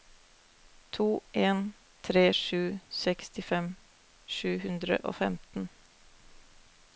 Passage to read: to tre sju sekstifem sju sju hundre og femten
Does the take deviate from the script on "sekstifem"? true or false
false